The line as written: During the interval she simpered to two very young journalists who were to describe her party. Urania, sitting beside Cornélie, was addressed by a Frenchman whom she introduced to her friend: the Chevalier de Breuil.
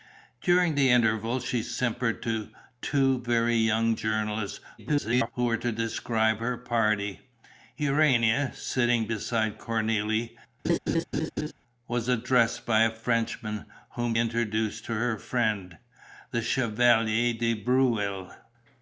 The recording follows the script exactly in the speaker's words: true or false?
false